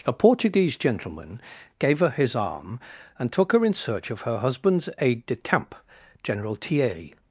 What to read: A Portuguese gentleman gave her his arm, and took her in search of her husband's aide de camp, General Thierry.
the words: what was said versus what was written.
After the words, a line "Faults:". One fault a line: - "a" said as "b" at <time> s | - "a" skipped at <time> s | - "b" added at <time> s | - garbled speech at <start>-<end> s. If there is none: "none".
A Portuguese gentleman gave her his arm, and took her in search of her husband's aide de camp, General Thierry.
Faults:
none